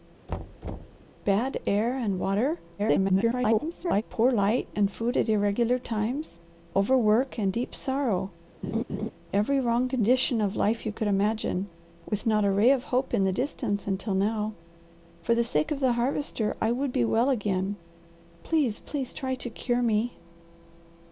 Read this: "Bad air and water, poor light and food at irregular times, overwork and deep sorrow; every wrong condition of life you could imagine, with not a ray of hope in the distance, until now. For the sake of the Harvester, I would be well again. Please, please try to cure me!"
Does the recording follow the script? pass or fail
fail